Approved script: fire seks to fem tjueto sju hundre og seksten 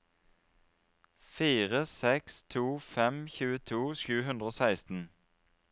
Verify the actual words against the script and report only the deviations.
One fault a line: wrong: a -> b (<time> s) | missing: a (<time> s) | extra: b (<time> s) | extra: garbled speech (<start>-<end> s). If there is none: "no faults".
no faults